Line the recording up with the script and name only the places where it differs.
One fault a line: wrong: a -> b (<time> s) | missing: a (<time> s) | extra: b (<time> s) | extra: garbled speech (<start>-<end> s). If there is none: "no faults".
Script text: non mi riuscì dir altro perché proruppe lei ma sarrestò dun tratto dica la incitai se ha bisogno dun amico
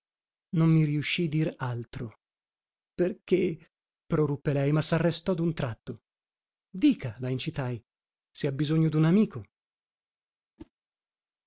no faults